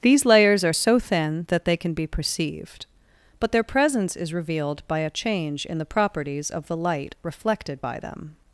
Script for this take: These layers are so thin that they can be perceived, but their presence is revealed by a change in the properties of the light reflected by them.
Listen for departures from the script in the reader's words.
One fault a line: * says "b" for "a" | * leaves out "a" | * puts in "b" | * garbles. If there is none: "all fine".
all fine